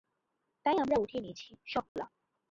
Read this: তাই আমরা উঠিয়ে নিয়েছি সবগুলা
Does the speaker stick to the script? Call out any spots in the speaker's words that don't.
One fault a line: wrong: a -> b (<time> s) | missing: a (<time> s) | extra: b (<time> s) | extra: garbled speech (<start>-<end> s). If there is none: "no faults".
no faults